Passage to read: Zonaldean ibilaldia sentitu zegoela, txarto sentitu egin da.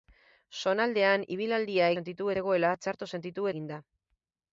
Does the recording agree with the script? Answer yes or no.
yes